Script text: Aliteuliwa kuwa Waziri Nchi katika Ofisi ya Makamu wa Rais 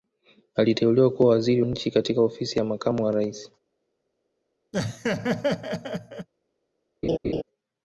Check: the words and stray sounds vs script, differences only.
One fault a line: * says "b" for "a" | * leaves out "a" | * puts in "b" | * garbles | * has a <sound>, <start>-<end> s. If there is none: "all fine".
* has a laugh, 4.7-6.3 s
* has a laugh, 7.0-7.4 s